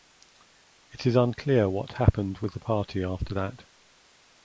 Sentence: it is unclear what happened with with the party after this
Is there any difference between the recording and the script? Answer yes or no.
yes